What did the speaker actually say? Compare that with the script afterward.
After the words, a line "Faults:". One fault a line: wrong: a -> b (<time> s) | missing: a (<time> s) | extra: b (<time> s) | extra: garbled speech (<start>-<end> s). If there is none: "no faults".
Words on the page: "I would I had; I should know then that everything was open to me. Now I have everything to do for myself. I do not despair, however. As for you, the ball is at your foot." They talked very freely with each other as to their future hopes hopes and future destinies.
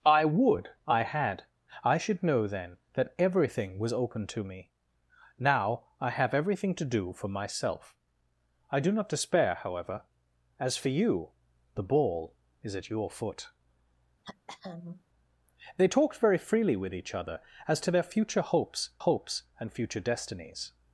"I would I had; I should know then that everything was open to me. Now I have everything to do for myself. I do not despair, however. As for you, the ball is at your foot." They talked very freely with each other as to their future hopes hopes and future destinies.
Faults:
no faults